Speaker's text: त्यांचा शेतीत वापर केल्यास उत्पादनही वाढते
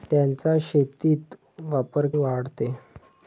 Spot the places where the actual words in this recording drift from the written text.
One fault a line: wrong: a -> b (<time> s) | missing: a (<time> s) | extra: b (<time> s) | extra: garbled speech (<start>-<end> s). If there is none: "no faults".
missing: केल्यास उत्पादनही (2.1 s)